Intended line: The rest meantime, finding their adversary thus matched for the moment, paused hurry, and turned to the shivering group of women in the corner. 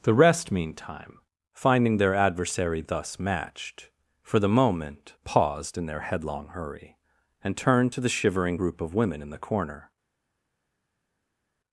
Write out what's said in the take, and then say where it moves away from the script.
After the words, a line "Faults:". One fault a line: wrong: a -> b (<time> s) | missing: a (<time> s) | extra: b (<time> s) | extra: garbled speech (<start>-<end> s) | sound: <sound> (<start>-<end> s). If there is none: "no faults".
The rest meantime, finding their adversary thus matched for the moment, paused in their headlong hurry, and turned to the shivering group of women in the corner.
Faults:
extra: in their headlong (5.8 s)